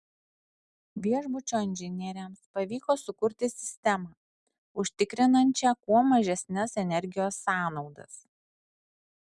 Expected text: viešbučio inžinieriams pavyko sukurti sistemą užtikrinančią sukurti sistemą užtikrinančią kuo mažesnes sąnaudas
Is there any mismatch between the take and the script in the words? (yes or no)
yes